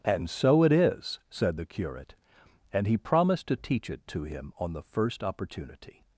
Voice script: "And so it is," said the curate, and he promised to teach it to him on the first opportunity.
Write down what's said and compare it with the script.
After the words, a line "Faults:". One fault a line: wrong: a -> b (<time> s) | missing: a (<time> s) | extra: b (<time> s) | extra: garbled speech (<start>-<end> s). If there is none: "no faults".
"And so it is," said the curate, and he promised to teach it to him on the first opportunity.
Faults:
no faults